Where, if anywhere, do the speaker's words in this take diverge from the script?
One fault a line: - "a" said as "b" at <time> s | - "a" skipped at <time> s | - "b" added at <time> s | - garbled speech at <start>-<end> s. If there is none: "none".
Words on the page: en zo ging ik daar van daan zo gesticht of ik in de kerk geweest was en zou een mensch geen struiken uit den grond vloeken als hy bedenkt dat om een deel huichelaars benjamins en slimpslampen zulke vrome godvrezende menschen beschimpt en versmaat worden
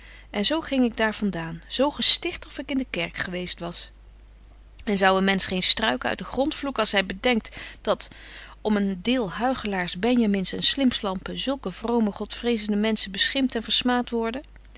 none